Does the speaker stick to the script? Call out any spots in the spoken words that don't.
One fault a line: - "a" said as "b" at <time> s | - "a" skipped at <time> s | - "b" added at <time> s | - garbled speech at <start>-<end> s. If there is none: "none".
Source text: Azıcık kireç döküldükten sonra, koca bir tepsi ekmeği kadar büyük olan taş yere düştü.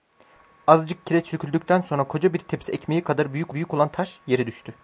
- "büyük" added at 3.5 s